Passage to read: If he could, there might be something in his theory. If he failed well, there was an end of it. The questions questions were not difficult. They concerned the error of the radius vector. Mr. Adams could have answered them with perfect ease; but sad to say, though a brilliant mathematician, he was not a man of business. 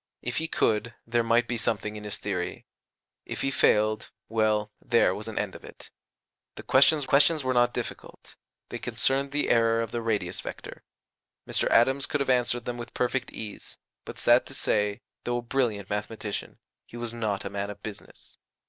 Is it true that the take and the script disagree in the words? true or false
false